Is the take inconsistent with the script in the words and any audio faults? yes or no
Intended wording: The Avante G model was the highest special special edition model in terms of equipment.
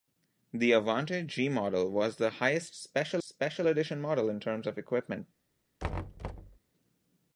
yes